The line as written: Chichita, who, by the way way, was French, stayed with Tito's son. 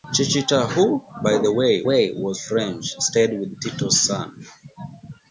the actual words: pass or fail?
pass